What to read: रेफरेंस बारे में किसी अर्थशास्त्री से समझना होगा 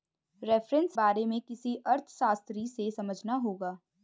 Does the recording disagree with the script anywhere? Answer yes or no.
no